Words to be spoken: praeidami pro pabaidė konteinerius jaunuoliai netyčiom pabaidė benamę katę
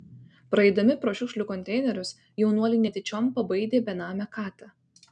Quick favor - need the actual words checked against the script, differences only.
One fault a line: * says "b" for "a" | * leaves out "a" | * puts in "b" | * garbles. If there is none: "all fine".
* says "šiukšlių" for "pabaidė"